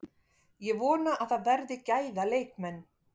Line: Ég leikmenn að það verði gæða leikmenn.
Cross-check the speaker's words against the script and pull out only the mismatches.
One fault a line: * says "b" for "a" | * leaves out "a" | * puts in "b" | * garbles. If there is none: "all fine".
* says "vona" for "leikmenn"